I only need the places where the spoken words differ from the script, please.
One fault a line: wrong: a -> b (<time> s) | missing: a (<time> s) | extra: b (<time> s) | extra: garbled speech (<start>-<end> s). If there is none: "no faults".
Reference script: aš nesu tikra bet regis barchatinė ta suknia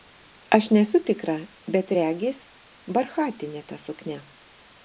no faults